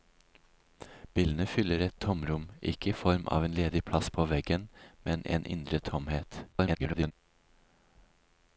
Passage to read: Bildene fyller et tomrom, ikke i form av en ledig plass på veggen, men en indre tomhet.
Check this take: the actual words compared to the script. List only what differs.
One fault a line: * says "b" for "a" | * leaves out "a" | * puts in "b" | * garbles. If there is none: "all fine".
* garbles